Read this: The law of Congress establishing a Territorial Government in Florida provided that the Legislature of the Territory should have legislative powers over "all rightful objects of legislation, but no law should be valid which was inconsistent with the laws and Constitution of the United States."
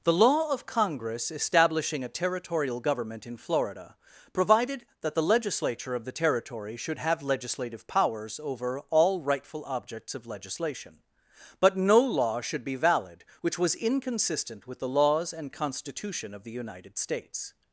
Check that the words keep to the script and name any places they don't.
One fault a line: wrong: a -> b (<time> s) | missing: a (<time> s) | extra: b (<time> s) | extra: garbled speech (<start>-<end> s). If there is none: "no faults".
no faults